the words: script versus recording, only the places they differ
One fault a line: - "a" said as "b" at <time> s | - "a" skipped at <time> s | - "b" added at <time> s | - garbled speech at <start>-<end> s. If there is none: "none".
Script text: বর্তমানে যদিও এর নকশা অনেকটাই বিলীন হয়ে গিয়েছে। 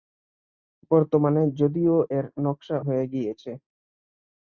- "অনেকটাই বিলীন" skipped at 2.8 s